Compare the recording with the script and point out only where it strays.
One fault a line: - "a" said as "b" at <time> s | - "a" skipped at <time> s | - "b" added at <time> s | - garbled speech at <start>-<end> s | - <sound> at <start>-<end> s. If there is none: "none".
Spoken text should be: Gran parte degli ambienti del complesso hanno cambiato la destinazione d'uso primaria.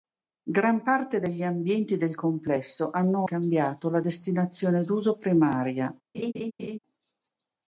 - laugh at 6.1-6.8 s